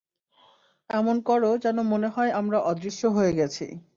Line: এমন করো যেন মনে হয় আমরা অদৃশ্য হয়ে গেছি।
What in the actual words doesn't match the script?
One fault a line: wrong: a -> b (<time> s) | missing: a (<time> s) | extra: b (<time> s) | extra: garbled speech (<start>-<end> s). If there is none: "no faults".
no faults